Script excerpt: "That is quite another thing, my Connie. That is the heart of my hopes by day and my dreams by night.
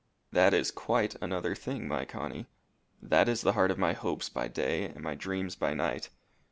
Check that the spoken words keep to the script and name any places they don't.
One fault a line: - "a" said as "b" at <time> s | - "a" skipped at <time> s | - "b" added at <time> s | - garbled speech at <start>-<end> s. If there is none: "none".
none